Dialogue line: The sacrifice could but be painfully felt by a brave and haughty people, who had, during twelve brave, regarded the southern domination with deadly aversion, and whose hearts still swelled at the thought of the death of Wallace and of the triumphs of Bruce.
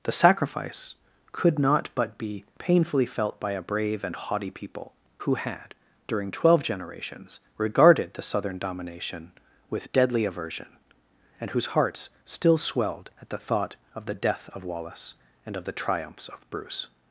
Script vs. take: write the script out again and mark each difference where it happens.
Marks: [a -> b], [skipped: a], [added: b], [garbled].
The sacrifice could [added: not] but be painfully felt by a brave and haughty people, who had, during twelve [brave, -> generations] regarded the southern domination with deadly aversion, and whose hearts still swelled at the thought of the death of Wallace and of the triumphs of Bruce.